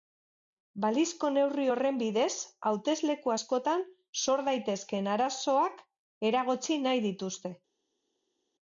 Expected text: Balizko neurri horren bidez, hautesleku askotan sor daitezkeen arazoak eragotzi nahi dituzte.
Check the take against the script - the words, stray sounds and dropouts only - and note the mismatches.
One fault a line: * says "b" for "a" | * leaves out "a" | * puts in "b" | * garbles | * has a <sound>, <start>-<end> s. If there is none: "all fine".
all fine